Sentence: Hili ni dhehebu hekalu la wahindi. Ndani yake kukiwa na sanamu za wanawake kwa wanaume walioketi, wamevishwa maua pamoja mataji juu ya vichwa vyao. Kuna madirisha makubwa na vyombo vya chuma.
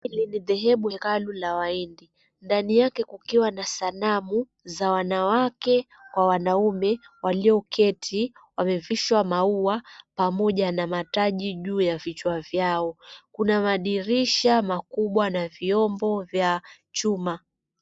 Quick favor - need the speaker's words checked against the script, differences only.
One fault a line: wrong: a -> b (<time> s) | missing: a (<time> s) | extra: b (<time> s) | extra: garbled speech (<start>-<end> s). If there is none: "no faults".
extra: na (10.7 s)